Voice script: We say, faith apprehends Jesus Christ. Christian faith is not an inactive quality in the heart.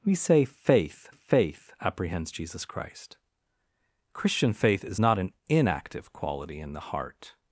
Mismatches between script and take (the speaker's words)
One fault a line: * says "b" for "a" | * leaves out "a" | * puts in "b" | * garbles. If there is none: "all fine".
* puts in "faith"